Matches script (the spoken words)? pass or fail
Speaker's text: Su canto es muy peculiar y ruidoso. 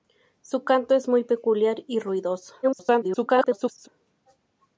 fail